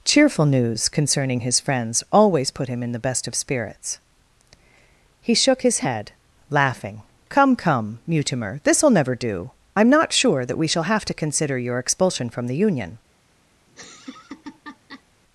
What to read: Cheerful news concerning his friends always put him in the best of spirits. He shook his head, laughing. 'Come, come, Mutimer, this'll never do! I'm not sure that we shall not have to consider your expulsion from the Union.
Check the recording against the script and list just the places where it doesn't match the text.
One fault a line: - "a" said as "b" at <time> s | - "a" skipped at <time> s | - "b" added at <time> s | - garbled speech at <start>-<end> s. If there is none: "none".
- "not" skipped at 10.8 s